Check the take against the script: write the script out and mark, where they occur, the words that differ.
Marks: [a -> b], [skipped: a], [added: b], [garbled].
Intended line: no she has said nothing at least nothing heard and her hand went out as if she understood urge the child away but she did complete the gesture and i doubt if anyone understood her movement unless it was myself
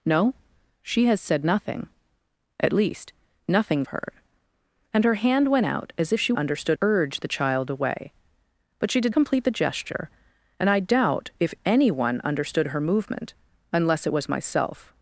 no she has said nothing at least nothing heard and her hand went out as if she understood urge the child away but she did complete the gesture and i doubt if anyone understood her movement unless it was myself